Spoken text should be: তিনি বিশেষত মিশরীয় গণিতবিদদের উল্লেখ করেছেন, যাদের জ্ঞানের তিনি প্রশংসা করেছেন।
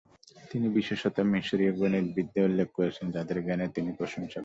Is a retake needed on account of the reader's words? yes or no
no